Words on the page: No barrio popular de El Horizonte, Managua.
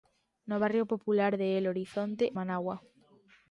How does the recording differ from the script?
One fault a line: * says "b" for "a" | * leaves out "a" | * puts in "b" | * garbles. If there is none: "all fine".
all fine